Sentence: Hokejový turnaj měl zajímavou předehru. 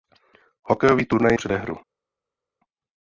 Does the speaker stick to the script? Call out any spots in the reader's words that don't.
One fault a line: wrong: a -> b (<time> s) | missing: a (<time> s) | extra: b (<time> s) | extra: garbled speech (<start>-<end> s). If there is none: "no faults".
missing: měl zajímavou (1.4 s)